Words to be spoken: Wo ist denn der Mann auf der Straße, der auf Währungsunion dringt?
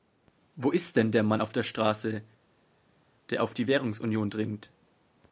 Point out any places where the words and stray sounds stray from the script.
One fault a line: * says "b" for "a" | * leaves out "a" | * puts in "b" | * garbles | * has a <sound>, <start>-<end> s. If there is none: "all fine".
* puts in "die"